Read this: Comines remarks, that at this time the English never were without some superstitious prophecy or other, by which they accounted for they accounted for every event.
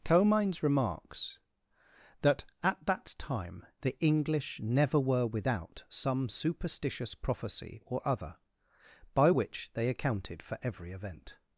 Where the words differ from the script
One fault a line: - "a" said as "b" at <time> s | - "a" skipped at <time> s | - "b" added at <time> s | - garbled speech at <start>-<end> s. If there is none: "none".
- "this" said as "that" at 2.9 s
- "they accounted for" skipped at 10.6 s